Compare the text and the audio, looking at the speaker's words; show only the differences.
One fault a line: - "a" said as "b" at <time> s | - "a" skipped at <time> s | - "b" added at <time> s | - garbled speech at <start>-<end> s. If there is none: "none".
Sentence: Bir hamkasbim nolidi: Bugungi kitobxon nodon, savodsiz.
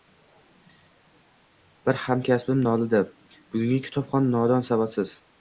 none